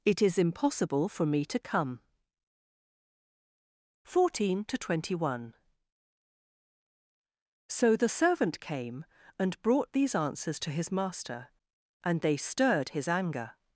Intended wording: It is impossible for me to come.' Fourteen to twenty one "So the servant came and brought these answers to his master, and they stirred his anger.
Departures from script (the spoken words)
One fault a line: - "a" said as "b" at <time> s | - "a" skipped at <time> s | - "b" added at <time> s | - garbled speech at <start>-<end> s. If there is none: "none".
none